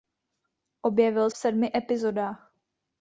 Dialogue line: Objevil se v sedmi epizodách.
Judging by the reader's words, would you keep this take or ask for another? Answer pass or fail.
fail